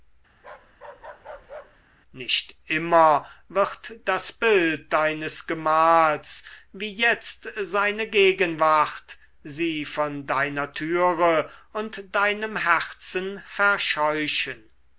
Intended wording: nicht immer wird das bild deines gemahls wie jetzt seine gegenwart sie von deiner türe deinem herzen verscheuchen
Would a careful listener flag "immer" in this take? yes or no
no